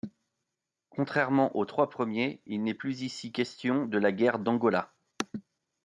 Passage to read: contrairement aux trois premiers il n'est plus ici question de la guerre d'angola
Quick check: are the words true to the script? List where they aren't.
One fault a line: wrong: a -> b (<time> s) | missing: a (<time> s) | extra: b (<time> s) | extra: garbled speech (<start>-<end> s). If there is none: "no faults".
no faults